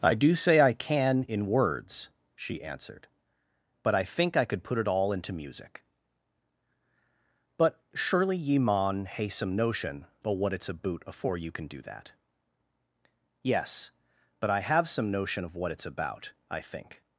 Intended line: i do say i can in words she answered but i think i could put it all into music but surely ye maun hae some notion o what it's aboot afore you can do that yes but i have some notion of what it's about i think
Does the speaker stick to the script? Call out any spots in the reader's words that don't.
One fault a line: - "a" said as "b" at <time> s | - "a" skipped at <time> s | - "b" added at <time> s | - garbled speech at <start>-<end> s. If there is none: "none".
none